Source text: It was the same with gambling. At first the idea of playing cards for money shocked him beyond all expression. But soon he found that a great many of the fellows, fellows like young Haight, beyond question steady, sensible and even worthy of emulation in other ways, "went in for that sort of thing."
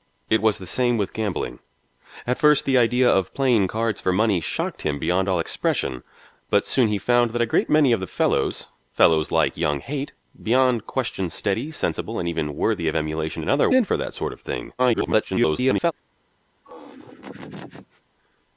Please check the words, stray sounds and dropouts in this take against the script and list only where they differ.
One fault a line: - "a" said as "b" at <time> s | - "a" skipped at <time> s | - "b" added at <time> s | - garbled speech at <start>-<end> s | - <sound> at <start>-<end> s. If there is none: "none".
- "ways went" skipped at 13.7 s
- garbled speech at 14.8-15.9 s
- laugh at 16.6-18.0 s